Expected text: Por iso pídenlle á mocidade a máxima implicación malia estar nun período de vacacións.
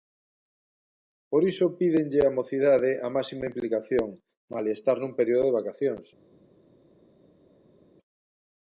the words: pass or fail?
pass